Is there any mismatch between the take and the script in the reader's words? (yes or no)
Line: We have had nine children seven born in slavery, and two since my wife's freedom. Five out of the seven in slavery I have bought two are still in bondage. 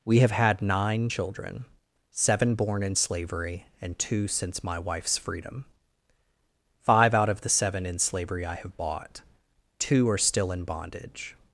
no